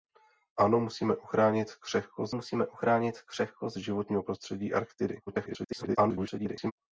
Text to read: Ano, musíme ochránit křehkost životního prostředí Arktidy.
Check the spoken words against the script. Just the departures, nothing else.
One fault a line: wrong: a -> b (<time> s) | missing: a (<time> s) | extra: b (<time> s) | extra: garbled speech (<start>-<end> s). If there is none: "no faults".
extra: musíme ochránit křehkost (2.3 s)
extra: garbled speech (5.3-6.7 s)